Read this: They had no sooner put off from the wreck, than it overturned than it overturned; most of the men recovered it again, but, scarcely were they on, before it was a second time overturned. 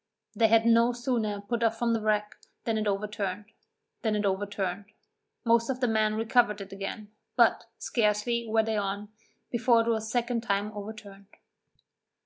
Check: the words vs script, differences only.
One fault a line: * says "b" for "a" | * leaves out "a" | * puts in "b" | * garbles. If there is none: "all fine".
all fine